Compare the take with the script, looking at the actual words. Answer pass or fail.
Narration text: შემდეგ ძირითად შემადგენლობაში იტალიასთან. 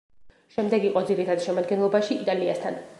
fail